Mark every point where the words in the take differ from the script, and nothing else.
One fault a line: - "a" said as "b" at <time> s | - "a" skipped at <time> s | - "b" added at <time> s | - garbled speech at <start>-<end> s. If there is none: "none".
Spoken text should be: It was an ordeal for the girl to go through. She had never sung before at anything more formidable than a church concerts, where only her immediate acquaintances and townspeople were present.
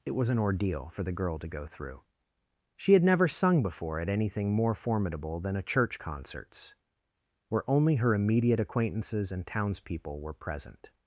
none